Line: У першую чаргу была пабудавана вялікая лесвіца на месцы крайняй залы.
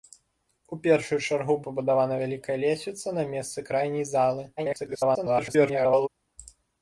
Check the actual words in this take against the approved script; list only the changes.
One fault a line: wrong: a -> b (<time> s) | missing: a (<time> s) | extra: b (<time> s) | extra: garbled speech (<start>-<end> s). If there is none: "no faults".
missing: была (1.6 s)
extra: garbled speech (4.6-6.1 s)